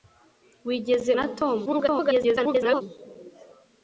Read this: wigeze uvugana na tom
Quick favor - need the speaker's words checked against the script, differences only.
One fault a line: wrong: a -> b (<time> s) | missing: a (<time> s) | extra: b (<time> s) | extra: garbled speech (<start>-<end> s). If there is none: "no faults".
missing: uvugana (1.1 s)
extra: garbled speech (1.7-2.8 s)